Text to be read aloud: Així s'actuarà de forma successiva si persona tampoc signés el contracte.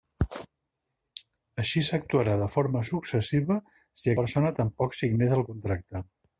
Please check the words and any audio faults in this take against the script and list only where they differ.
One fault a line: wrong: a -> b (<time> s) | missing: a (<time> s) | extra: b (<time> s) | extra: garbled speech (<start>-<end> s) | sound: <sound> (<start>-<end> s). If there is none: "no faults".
no faults